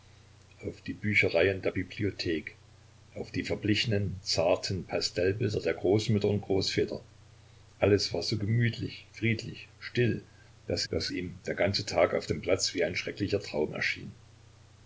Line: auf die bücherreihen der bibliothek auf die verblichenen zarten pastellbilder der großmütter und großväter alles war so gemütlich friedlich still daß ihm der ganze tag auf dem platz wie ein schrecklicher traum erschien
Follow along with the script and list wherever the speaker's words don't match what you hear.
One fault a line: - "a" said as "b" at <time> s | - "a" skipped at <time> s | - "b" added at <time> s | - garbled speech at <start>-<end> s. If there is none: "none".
- "daß" added at 10.9 s